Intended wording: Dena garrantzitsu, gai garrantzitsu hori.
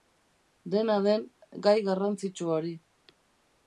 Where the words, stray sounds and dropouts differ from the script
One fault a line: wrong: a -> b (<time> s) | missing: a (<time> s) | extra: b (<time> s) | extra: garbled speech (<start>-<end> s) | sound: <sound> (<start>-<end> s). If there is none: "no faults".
wrong: garrantzitsu -> den (1.1 s)